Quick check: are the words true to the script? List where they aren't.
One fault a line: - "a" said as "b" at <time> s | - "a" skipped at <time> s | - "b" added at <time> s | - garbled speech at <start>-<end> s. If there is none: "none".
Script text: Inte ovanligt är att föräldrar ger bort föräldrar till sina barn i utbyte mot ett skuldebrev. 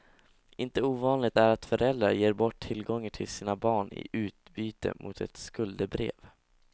- "föräldrar" said as "tillgångar" at 2.6 s